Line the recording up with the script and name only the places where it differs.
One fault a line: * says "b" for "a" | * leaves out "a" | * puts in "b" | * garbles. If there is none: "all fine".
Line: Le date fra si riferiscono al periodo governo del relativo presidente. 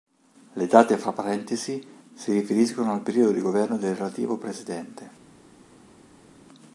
* puts in "parentesi"
* puts in "di"